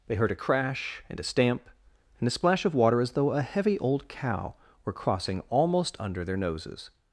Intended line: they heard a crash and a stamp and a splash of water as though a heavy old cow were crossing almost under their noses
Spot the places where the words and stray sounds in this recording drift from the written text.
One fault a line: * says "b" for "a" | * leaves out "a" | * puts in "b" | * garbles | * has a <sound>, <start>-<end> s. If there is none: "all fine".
all fine